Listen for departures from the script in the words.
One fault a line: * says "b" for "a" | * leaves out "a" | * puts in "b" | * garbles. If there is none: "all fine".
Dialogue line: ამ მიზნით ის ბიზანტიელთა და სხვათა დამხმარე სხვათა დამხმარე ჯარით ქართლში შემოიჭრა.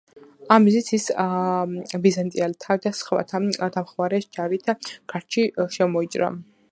* leaves out "სხვათა დამხმარე"